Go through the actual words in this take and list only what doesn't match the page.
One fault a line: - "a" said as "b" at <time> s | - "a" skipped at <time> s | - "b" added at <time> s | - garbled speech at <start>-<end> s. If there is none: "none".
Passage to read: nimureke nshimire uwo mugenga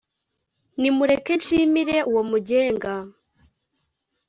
none